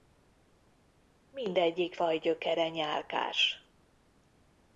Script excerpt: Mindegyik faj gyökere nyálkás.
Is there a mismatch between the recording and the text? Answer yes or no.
no